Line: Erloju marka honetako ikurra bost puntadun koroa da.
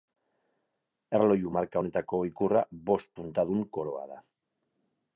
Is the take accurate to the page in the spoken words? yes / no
yes